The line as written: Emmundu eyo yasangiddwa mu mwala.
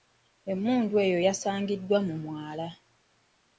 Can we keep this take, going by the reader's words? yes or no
yes